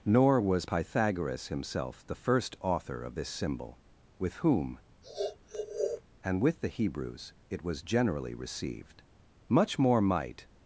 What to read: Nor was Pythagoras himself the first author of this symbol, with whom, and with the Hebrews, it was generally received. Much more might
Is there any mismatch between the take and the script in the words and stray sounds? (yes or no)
yes